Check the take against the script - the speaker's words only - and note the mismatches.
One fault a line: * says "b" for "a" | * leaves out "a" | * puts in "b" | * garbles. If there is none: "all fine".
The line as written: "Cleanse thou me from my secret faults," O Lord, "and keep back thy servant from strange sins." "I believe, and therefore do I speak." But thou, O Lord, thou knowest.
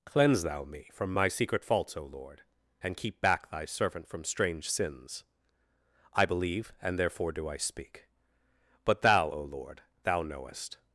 all fine